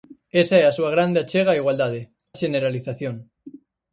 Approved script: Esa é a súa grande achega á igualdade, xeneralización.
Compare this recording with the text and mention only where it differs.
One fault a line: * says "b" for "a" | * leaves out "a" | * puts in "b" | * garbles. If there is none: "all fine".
all fine